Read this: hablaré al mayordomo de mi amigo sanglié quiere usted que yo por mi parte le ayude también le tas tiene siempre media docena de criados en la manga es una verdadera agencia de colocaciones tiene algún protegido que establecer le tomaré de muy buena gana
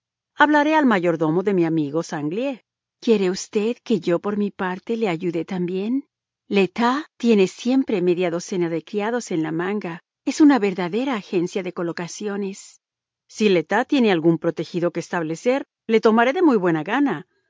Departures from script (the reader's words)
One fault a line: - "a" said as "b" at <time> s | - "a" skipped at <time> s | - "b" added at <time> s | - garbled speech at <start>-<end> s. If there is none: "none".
- "si le tas" added at 13.3 s